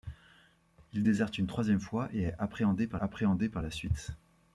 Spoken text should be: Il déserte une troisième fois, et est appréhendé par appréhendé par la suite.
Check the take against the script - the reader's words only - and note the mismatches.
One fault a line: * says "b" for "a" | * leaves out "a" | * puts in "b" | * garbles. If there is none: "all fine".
all fine